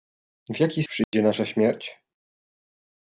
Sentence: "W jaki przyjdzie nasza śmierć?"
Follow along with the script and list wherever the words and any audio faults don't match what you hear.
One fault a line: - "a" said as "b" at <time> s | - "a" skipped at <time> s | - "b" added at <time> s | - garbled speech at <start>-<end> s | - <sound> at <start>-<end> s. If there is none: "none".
- dropout at 1.0-1.1 s